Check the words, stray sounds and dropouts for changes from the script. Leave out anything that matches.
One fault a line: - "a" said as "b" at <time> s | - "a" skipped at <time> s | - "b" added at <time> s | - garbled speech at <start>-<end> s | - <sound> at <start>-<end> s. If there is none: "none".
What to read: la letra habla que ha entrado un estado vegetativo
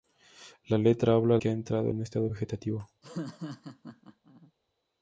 - laugh at 3.0-4.5 s